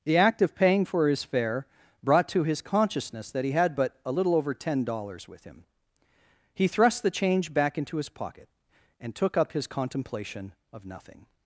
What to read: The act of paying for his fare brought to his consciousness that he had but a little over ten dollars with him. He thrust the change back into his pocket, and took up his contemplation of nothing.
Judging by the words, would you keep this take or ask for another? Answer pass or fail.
pass